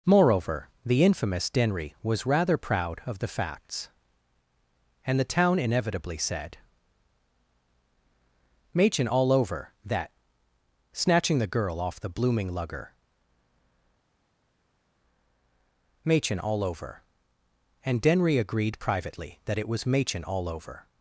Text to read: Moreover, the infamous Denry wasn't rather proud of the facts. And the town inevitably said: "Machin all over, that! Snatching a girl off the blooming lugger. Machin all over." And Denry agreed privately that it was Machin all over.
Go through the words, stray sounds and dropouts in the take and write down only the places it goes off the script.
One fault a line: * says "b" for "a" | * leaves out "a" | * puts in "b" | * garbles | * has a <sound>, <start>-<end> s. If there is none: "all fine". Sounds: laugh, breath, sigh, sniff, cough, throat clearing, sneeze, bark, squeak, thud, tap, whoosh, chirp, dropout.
* says "was" for "wasn't"
* says "the" for "a"